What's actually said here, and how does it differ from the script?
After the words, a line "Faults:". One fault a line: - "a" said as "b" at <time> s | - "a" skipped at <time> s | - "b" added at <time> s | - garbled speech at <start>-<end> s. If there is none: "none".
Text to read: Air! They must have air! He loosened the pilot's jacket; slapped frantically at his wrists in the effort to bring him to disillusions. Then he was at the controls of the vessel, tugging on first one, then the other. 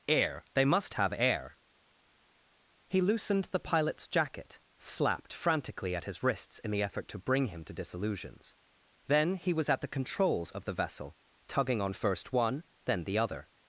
Air! They must have air! He loosened the pilot's jacket; slapped frantically at his wrists in the effort to bring him to disillusions. Then he was at the controls of the vessel, tugging on first one, then the other.
Faults:
none